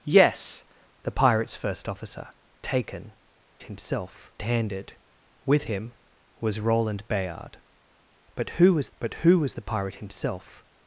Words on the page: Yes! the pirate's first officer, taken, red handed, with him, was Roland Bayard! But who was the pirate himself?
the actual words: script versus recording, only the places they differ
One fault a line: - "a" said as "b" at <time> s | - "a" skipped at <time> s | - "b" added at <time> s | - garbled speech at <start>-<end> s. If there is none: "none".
- "red" said as "himself" at 3.6 s
- "but who was" added at 9.0 s